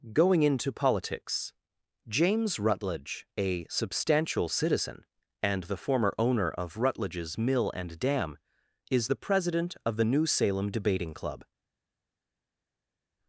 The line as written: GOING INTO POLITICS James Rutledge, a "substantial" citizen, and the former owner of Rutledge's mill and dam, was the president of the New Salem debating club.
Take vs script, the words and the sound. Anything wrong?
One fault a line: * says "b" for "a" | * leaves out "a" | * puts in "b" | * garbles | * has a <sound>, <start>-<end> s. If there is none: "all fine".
* says "is" for "was"